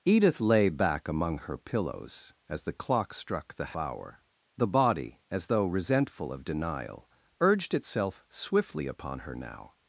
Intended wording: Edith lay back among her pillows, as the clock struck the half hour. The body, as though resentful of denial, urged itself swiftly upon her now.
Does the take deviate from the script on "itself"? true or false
false